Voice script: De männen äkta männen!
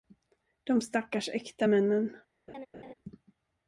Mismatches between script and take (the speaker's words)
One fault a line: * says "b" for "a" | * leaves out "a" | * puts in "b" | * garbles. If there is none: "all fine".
* says "stackars" for "männen"